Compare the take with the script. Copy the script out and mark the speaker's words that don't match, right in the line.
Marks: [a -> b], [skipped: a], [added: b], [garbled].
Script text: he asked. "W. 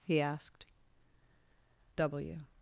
he asked. "W.